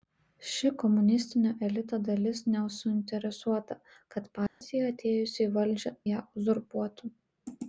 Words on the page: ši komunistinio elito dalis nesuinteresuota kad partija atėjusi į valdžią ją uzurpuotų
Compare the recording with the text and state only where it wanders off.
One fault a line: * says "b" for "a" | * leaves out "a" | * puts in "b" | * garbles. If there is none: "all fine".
all fine